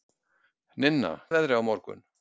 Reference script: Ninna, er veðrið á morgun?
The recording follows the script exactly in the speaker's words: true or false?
true